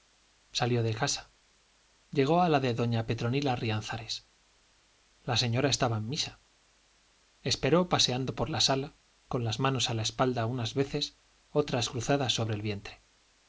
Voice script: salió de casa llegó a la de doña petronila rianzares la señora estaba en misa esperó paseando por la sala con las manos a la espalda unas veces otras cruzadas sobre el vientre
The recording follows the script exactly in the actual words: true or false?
true